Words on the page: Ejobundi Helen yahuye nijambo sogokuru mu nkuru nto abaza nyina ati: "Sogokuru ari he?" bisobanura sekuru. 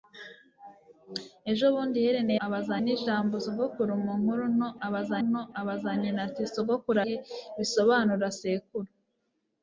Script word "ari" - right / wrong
wrong